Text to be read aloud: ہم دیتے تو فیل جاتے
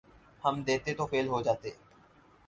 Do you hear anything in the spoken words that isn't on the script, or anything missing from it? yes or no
yes